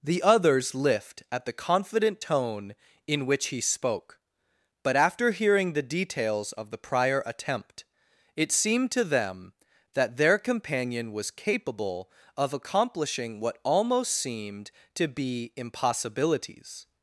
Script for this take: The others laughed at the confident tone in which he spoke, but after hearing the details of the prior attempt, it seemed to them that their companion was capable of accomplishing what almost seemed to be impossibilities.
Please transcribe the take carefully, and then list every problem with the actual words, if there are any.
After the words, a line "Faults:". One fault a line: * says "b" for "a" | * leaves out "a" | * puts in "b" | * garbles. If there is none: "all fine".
The others lift at the confident tone in which he spoke, but after hearing the details of the prior attempt, it seemed to them that their companion was capable of accomplishing what almost seemed to be impossibilities.
Faults:
* says "lift" for "laughed"